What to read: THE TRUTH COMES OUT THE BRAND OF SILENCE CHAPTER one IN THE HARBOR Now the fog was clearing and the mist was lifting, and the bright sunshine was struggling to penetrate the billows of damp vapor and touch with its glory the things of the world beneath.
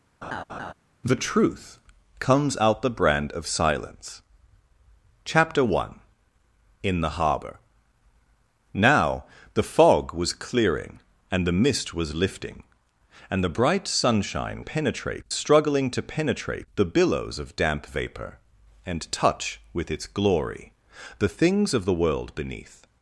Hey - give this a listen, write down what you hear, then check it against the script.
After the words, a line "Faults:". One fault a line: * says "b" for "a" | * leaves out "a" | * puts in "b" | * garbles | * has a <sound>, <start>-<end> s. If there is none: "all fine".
THE TRUTH COMES OUT THE BRAND OF SILENCE CHAPTER one IN THE HARBOR Now the fog was clearing and the mist was lifting, and the bright sunshine penetrate struggling to penetrate the billows of damp vapor and touch with its glory the things of the world beneath.
Faults:
* has a laugh, 0.2-0.7 s
* says "penetrate" for "was"